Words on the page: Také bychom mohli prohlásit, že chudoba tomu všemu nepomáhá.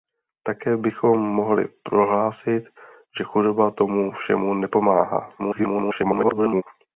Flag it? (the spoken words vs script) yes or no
yes